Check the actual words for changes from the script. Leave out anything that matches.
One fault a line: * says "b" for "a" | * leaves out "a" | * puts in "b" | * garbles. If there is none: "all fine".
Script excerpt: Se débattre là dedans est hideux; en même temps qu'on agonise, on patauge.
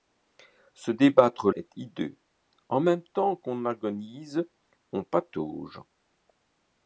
* leaves out "là dedans"